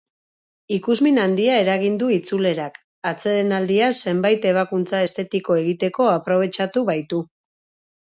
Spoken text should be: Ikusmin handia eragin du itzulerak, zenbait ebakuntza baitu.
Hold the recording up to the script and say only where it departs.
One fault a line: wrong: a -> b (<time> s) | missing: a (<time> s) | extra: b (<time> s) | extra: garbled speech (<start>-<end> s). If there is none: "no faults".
extra: atsedenaldia (3.1 s)
extra: estetiko egiteko aprobetxatu (5.1 s)